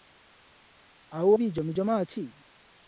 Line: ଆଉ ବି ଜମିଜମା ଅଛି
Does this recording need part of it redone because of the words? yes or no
no